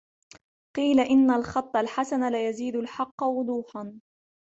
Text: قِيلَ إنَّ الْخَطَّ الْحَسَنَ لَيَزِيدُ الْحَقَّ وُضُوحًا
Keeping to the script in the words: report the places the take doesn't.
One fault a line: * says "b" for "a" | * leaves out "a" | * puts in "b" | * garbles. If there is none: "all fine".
all fine